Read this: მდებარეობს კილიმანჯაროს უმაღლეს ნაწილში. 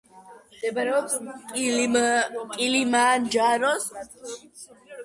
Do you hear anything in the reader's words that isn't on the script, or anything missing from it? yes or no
yes